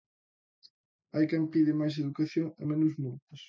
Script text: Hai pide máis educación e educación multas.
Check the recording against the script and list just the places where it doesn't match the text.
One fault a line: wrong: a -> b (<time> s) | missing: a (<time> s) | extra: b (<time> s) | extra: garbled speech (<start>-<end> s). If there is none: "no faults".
extra: quen (1.3 s)
wrong: educación -> menos (2.7 s)